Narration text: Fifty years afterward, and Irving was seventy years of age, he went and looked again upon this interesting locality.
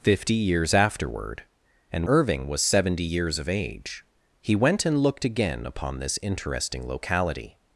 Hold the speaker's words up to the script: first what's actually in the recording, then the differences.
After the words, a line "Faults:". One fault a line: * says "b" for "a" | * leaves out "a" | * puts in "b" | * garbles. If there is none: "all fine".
Fifty years afterward, and Irving was seventy years of age, he went and looked again upon this interesting locality.
Faults:
all fine